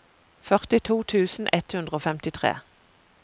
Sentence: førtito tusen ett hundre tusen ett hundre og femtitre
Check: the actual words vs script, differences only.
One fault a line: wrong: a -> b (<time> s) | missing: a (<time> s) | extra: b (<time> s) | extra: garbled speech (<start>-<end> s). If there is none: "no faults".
missing: tusen ett hundre (1.9 s)